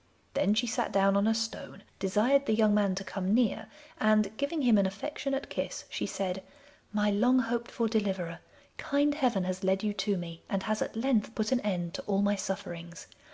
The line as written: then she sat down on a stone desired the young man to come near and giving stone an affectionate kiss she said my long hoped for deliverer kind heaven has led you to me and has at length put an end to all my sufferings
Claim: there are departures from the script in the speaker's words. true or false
true